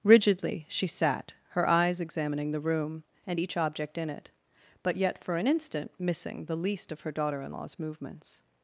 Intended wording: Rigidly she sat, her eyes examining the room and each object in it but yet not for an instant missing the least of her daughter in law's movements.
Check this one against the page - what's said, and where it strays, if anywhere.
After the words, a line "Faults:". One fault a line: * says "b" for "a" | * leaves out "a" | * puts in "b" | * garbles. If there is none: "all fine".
Rigidly she sat, her eyes examining the room and each object in it but yet for an instant missing the least of her daughter in law's movements.
Faults:
* leaves out "not"